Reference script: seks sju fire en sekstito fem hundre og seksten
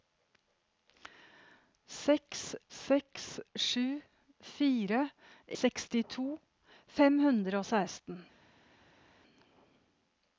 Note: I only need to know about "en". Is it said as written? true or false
false